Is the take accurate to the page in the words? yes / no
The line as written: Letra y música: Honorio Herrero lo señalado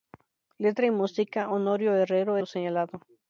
yes